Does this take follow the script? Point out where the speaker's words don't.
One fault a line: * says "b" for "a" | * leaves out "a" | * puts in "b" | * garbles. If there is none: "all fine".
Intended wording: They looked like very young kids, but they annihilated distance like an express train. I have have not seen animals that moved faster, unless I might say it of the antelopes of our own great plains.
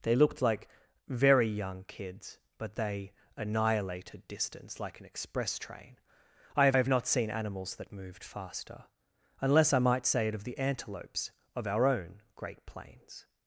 all fine